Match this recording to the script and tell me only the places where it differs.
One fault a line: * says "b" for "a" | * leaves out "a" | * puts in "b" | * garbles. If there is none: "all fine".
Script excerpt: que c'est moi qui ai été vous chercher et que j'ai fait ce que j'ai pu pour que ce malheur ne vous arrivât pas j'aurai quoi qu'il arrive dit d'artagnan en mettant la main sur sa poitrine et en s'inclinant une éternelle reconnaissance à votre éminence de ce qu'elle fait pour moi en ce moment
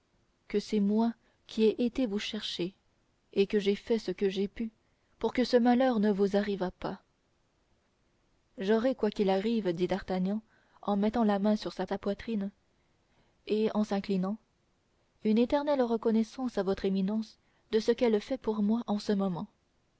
* puts in "sa"